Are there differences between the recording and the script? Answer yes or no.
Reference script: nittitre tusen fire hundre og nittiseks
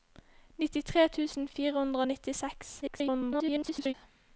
yes